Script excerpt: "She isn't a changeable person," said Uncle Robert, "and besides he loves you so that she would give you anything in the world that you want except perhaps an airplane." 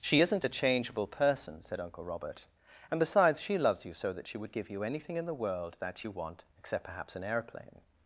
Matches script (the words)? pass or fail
fail